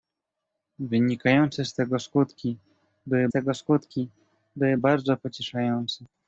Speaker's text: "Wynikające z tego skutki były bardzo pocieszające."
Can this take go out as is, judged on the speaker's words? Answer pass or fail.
fail